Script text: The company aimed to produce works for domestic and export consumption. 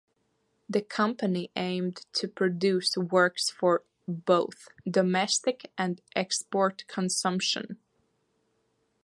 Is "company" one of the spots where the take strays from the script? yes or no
no